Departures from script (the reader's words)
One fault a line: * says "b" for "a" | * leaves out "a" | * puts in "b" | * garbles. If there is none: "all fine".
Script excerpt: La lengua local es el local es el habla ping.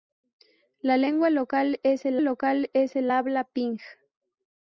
all fine